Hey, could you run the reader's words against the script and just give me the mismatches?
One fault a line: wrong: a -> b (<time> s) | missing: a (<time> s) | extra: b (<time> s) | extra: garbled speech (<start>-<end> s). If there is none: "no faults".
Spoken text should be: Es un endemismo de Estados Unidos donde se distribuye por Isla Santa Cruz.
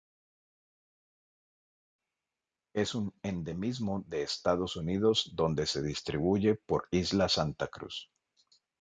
no faults